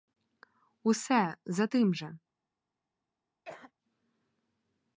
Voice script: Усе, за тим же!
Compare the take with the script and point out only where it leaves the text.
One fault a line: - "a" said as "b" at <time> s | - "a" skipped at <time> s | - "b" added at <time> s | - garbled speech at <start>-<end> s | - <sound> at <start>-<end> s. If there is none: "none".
- cough at 3.5-3.7 s